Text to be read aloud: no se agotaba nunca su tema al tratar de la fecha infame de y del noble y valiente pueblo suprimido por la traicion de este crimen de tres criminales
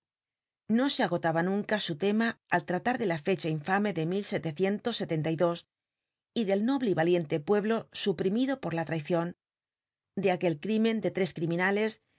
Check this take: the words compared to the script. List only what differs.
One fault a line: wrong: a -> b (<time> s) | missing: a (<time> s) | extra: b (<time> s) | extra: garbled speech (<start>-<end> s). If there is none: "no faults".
wrong: este -> aquel (10.3 s)